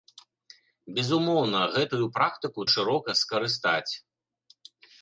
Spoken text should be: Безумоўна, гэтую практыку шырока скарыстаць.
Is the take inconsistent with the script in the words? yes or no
no